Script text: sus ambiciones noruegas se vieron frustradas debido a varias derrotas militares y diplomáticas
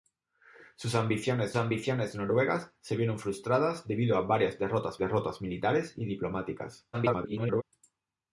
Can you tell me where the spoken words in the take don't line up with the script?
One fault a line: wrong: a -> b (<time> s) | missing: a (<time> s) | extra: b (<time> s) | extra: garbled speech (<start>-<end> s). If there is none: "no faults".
extra: ambiciones (1.6 s)
extra: derrotas (5.0 s)
extra: garbled speech (6.9-7.6 s)